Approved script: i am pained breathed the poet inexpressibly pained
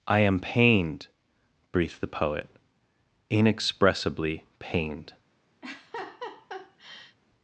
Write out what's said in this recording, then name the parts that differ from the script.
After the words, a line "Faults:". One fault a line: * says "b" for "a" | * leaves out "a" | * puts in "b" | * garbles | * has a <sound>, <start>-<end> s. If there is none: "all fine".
i am pained breathed the poet inexpressibly pained
Faults:
* has a laugh, 5.6-7.2 s